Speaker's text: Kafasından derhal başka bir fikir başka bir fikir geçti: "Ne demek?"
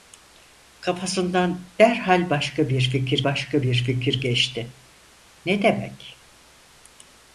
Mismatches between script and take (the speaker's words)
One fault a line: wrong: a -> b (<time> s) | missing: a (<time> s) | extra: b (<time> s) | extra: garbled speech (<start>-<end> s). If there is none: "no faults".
no faults